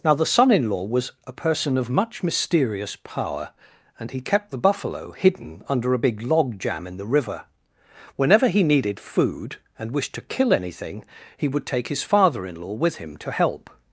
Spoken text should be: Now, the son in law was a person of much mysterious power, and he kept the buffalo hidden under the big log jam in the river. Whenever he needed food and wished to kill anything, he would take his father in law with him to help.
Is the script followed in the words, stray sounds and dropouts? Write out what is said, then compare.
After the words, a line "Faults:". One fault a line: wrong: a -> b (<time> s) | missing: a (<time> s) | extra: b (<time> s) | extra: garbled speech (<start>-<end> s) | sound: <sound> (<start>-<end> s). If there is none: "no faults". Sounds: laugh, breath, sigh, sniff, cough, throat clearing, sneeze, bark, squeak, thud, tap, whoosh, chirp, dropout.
Now, the son in law was a person of much mysterious power, and he kept the buffalo hidden under a big log jam in the river. Whenever he needed food and wished to kill anything, he would take his father in law with him to help.
Faults:
wrong: the -> a (5.9 s)